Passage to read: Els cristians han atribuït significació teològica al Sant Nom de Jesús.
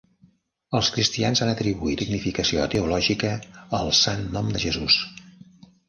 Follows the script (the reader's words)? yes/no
yes